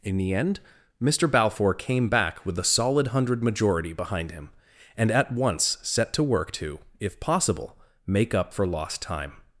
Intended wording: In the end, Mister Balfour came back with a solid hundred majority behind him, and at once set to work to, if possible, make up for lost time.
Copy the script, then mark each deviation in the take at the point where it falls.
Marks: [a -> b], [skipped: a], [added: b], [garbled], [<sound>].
In the end, Mister Balfour came back with a solid hundred majority behind him, and at once set to work to, if possible, make up for lost time.